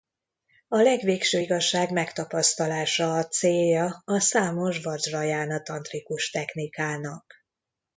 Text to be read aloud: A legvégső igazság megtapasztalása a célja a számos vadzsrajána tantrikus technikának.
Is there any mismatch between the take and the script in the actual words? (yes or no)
no